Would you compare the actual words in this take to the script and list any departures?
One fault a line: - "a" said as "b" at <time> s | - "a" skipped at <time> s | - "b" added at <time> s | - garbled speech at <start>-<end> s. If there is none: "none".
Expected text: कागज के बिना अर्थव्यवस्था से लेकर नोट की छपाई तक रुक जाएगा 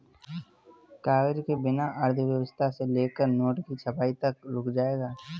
none